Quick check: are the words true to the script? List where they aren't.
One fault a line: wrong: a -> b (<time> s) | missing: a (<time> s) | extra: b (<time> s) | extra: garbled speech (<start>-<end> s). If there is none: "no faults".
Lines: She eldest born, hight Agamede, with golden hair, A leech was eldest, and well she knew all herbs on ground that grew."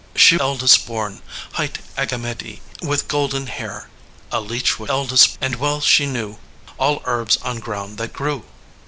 no faults